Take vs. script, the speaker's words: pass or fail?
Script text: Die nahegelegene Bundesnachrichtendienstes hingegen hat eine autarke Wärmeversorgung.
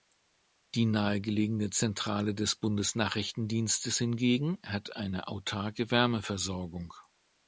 fail